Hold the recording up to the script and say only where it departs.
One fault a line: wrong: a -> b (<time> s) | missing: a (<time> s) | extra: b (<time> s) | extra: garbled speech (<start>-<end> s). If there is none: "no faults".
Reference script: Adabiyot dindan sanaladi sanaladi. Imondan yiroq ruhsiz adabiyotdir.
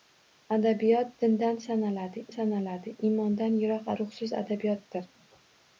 no faults